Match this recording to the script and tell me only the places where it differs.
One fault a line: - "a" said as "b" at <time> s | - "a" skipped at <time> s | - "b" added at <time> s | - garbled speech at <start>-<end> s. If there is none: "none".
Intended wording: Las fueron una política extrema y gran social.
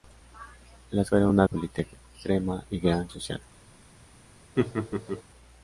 none